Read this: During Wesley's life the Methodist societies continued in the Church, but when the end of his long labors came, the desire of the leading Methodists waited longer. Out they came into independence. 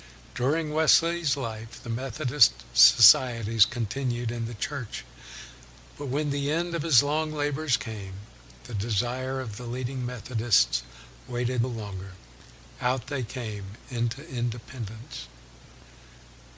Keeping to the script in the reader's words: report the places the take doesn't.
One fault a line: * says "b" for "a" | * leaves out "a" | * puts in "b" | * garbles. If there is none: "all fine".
all fine